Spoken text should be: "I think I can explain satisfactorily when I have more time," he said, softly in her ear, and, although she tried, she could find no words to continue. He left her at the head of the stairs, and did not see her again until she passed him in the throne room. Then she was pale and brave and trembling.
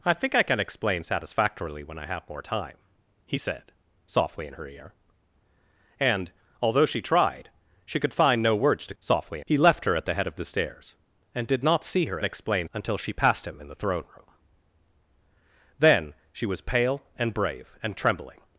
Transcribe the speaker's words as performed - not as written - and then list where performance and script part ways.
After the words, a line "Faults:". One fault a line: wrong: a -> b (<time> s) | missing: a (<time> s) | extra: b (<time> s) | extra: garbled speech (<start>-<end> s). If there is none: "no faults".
"I think I can explain satisfactorily when I have more time," he said, softly in her ear, and, although she tried, she could find no words to softly. He left her at the head of the stairs, and did not see her explain until she passed him in the throne room. Then she was pale and brave and trembling.
Faults:
wrong: continue -> softly (9.0 s)
wrong: again -> explain (12.2 s)